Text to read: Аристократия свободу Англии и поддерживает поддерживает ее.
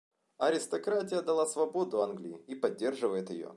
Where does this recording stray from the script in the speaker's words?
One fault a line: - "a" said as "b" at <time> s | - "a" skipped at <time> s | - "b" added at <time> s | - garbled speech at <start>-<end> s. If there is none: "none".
- "дала" added at 1.2 s
- "поддерживает" skipped at 3.3 s